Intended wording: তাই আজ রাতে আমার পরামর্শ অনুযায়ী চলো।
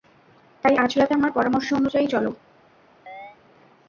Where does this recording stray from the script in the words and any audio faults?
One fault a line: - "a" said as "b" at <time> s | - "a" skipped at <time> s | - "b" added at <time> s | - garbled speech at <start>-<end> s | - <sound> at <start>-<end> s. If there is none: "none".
- chirp at 3.1-3.4 s